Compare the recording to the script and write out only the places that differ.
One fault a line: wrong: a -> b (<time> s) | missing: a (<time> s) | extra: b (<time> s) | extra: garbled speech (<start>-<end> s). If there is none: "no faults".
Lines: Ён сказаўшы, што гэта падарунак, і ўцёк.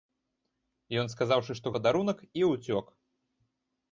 missing: гэта (1.7 s)